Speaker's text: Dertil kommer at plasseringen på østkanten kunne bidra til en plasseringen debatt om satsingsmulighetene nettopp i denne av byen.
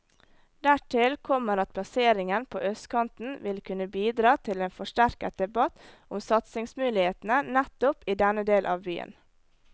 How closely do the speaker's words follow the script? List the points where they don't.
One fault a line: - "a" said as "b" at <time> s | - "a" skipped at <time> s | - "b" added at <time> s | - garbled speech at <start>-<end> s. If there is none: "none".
- "vil" added at 3.4 s
- "plasseringen" said as "forsterket" at 4.8 s
- "del" added at 8.5 s